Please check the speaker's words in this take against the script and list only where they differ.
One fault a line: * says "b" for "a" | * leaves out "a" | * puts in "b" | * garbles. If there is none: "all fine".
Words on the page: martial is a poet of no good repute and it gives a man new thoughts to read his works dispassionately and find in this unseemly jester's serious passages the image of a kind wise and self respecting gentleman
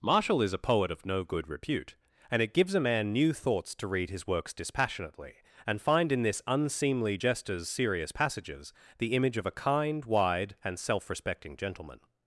* says "wide" for "wise"